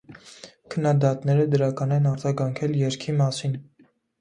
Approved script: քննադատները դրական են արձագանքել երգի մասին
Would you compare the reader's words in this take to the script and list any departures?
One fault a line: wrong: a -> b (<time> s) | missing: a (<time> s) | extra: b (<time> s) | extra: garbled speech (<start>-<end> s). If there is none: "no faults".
no faults